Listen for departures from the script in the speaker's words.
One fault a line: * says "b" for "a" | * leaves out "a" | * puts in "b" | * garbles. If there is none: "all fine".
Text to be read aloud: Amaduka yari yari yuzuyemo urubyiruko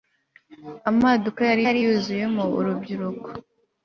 all fine